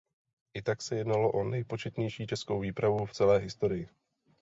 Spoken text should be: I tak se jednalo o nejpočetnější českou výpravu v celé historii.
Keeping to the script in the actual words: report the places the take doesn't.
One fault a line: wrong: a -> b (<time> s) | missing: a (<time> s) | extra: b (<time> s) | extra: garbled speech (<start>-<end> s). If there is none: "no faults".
no faults